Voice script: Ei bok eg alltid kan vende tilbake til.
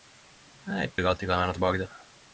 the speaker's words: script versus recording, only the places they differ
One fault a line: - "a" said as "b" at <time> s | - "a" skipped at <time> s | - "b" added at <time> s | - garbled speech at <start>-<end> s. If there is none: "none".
- "bok" skipped at 0.9 s